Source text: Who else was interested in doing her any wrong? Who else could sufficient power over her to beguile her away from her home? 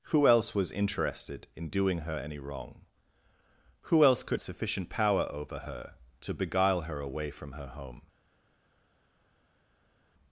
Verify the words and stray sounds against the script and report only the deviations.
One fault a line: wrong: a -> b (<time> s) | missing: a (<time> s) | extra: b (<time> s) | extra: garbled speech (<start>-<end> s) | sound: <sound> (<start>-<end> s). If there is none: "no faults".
no faults